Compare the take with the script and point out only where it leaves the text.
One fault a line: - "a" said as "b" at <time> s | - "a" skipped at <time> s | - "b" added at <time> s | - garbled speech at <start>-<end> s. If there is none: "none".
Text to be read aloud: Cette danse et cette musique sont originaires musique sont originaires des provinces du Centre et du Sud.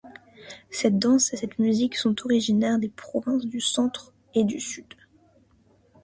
- "musique sont originaires" skipped at 2.8 s